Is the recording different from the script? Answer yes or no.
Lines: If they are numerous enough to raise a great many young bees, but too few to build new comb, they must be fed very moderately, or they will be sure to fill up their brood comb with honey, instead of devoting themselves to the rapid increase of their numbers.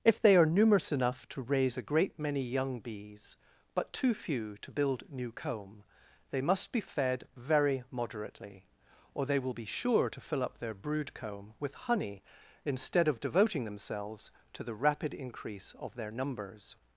no